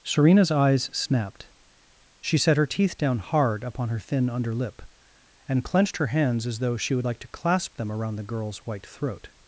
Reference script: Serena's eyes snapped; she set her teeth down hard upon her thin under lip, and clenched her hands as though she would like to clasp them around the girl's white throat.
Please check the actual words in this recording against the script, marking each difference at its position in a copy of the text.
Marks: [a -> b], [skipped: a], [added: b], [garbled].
Serena's eyes snapped; she set her teeth down hard upon her thin under lip, and clenched her hands as though she would like to clasp them around the girl's white throat.